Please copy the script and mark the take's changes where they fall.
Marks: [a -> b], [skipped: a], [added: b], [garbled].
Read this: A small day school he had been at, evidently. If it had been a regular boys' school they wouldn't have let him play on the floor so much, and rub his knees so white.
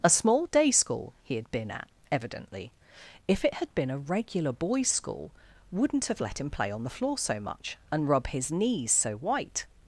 A small day school he had been at, evidently. If it had been a regular boys' school [skipped: they] wouldn't have let him play on the floor so much, and rub his knees so white.